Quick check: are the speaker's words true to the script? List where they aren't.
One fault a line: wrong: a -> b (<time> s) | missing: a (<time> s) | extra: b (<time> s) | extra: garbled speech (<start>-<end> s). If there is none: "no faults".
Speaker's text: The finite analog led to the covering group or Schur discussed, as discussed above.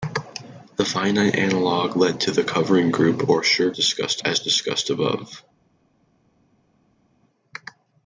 no faults